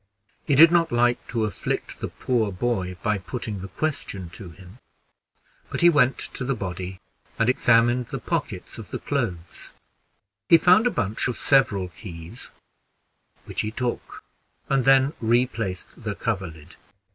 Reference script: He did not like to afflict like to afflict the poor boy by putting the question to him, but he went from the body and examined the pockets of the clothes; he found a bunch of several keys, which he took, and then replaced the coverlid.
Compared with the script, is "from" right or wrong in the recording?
wrong